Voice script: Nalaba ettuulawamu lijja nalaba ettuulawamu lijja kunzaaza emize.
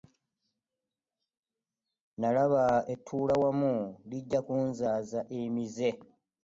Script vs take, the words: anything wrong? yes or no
yes